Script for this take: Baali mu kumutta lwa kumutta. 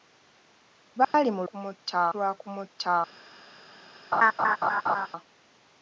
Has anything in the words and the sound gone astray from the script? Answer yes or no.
yes